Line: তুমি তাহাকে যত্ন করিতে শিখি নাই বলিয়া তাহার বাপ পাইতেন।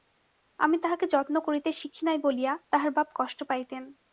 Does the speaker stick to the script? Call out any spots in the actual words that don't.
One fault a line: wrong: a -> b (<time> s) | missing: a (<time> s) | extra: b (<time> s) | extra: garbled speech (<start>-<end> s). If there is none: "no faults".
wrong: তুমি -> আমি (0.6 s)
extra: কষ্ট (3.1 s)